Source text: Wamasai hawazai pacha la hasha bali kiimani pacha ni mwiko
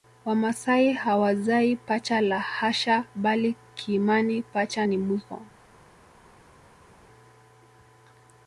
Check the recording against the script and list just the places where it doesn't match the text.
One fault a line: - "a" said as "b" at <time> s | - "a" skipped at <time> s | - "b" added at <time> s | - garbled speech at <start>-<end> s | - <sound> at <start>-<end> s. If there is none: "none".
none